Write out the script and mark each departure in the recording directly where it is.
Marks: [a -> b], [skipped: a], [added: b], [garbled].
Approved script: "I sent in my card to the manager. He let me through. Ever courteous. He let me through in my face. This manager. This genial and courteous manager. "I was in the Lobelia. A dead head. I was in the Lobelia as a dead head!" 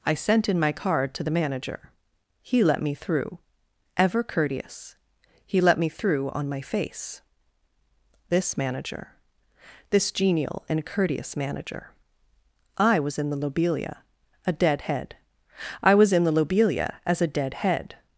"I sent in my card to the manager. He let me through. Ever courteous. He let me through [in -> on] my face. This manager. This genial and courteous manager. "I was in the Lobelia. A dead head. I was in the Lobelia as a dead head!"